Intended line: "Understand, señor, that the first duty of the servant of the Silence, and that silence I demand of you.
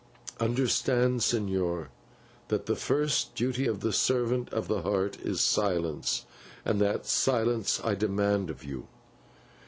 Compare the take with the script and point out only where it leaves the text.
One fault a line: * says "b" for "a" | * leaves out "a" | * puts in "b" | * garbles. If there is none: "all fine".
* puts in "Heart is"